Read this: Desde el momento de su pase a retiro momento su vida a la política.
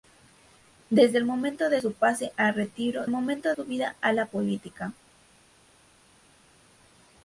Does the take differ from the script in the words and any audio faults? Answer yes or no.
no